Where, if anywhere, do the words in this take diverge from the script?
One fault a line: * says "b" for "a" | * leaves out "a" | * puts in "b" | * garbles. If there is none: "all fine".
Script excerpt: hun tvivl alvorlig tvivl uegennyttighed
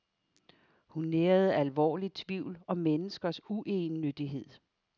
* says "nærede" for "tvivl"
* puts in "om menneskers"